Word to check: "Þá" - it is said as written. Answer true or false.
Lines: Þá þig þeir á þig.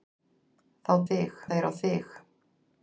true